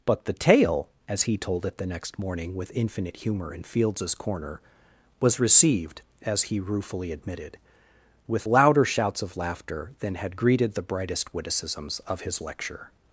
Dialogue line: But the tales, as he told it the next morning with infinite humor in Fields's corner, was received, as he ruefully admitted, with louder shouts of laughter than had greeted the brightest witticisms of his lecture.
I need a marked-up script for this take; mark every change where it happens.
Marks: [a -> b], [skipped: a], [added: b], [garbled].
But the [tales, -> tale] as he told it the next morning with infinite humor in Fields's corner, was received, as he ruefully admitted, with louder shouts of laughter than had greeted the brightest witticisms of his lecture.